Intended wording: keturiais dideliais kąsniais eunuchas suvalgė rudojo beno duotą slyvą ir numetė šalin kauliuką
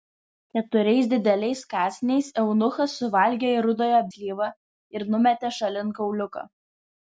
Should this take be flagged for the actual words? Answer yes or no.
yes